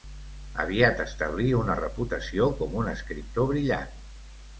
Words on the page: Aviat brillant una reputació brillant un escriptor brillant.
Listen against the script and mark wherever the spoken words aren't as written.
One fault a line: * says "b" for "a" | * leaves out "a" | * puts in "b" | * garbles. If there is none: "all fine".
* says "establí" for "brillant"
* says "com" for "brillant"